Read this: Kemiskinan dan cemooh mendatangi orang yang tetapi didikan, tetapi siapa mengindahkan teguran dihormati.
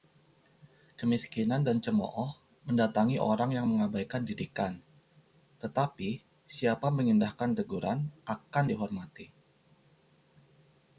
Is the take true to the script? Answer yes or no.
no